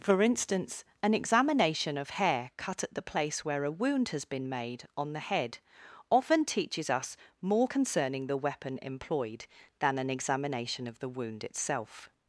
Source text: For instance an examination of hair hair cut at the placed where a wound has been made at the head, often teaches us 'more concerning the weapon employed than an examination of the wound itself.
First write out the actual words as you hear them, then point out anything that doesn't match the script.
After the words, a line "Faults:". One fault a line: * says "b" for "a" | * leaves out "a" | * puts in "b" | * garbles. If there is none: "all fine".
For instance an examination of hair cut at the place where a wound has been made on the head, often teaches us 'more concerning the weapon employed than an examination of the wound itself.
Faults:
* leaves out "hair"
* says "place" for "placed"
* says "on" for "at"